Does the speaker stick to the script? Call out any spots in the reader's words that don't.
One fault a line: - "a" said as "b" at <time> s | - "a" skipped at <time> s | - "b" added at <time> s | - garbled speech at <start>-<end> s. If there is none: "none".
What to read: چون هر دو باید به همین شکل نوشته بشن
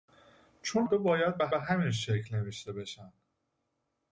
- "هر" skipped at 0.9 s
- "به" added at 1.5 s